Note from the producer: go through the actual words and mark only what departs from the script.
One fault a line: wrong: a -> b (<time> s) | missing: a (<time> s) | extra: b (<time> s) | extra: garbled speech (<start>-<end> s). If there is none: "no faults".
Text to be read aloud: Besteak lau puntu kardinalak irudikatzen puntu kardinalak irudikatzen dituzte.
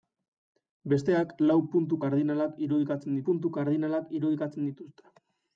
no faults